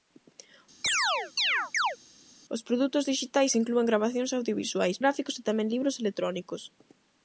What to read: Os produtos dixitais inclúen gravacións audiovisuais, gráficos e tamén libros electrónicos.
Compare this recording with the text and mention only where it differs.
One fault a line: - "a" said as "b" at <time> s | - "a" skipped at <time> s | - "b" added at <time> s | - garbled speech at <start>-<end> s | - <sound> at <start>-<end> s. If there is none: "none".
- chirp at 0.8-2.0 s